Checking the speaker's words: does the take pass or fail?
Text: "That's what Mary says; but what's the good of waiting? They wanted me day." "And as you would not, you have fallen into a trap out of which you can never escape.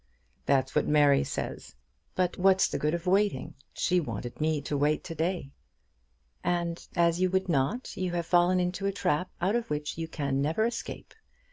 fail